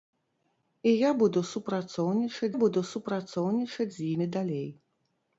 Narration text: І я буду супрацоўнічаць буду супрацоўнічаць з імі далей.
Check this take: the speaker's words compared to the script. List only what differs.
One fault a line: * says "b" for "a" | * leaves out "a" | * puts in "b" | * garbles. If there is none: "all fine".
all fine